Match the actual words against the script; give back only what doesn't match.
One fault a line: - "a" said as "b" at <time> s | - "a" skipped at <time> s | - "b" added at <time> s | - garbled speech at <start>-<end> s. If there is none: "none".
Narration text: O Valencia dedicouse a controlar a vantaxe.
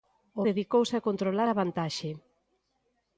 - "Valencia" skipped at 0.4 s